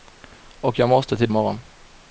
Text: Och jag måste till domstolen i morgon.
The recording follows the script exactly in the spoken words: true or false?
false